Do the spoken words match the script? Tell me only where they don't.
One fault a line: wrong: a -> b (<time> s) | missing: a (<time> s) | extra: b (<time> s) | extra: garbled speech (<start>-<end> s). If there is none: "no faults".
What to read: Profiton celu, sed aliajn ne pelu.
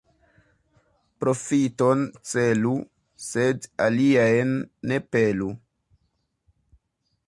no faults